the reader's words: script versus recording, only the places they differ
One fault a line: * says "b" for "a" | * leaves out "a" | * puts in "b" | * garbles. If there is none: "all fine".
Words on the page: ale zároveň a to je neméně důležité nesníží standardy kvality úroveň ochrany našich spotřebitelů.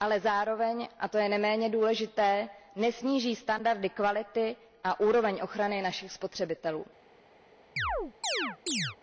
* puts in "a"